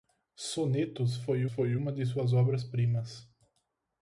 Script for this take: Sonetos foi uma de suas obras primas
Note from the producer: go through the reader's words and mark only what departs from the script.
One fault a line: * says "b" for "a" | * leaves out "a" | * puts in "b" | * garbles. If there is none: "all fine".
* puts in "foi"